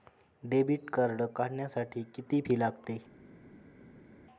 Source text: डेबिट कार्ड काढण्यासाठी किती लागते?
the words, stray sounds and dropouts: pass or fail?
fail